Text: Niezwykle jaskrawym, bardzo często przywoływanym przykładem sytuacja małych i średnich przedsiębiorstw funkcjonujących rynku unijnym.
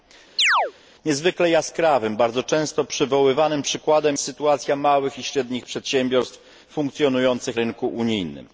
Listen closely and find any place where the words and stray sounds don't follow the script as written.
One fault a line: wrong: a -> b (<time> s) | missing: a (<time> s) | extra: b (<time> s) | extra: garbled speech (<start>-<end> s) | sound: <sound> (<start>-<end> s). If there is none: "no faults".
sound: chirp (0.4-0.7 s)